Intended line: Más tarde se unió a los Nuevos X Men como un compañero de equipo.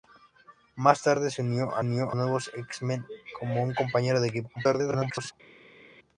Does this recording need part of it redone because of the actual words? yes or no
yes